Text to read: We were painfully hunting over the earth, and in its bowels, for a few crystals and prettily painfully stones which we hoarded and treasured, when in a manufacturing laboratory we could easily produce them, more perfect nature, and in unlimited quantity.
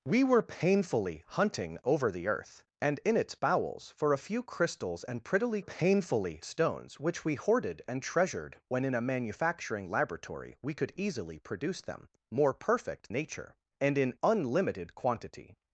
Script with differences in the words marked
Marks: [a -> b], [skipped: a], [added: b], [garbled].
We were painfully hunting over the earth, and in its bowels, for a few crystals and prettily painfully stones which we hoarded and treasured, when in a manufacturing laboratory we could easily produce them, more perfect nature, and in unlimited quantity.